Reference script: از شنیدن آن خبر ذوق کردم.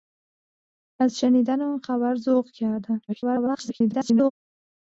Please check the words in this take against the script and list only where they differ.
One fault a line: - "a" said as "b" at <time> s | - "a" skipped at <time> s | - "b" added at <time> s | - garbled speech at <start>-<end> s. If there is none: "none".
- garbled speech at 3.1-4.3 s